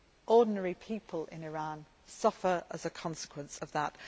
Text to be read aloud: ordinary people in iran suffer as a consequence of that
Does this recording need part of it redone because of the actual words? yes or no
no